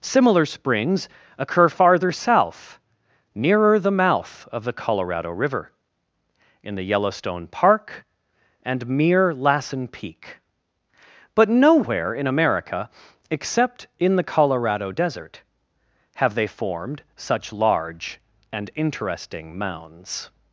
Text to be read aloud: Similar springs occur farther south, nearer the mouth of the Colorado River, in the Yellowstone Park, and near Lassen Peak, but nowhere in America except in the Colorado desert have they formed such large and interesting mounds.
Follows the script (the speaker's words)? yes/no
no